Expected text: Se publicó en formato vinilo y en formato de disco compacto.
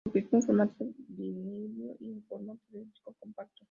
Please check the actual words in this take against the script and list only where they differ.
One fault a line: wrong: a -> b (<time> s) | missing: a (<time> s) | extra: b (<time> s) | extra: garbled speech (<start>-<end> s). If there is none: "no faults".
no faults